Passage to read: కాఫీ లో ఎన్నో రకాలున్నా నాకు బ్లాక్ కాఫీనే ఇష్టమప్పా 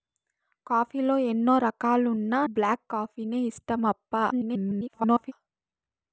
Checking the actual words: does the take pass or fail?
fail